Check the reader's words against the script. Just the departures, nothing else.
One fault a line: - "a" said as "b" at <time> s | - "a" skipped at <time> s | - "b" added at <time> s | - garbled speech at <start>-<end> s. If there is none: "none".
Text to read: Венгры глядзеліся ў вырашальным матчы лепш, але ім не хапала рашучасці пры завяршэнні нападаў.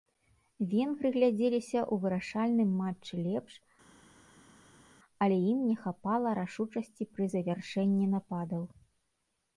none